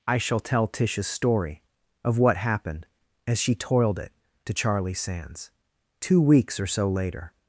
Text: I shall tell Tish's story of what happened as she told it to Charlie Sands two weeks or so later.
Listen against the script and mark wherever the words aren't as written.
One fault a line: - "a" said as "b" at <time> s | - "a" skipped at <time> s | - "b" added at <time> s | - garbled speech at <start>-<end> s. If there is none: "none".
- "told" said as "toiled" at 3.5 s